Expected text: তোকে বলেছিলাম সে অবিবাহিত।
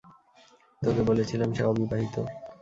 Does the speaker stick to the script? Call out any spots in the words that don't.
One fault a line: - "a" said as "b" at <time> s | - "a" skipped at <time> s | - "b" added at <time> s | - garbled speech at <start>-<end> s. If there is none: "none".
none